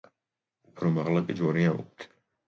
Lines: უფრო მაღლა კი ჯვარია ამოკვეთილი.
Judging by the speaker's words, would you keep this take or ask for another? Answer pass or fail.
pass